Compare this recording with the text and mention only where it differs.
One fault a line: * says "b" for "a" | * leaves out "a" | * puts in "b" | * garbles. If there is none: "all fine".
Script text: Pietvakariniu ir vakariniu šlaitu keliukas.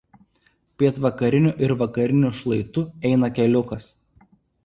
* puts in "eina"